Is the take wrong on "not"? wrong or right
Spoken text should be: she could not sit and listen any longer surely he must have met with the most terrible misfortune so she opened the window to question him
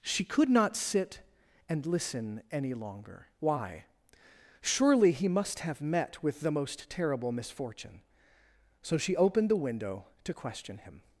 right